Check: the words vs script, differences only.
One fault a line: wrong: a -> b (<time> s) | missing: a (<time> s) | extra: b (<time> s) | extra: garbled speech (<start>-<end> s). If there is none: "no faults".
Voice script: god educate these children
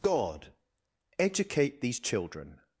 no faults